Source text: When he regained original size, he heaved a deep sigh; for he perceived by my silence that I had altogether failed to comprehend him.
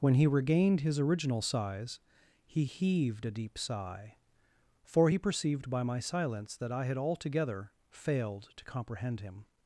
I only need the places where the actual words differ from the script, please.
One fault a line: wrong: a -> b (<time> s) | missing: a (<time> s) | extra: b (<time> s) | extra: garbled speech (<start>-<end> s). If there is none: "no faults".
extra: his (0.8 s)